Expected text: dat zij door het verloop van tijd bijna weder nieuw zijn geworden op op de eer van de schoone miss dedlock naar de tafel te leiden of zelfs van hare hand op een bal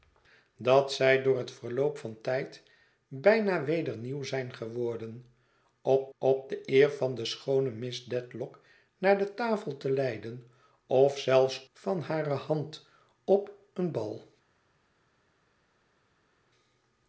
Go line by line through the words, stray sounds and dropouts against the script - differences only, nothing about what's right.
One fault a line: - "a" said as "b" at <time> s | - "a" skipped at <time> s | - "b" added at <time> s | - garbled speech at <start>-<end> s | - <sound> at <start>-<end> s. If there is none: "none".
none